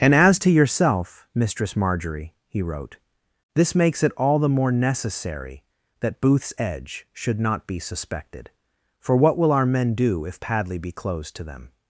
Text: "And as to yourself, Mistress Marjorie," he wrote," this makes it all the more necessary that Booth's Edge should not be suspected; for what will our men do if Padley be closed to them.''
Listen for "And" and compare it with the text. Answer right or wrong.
right